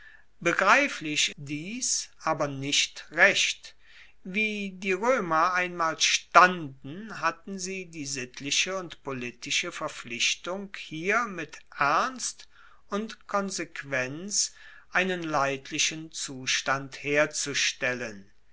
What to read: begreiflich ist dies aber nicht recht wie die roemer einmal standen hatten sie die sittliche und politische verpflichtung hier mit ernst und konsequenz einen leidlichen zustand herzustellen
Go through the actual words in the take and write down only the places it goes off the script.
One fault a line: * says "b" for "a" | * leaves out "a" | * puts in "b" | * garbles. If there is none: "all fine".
* leaves out "ist"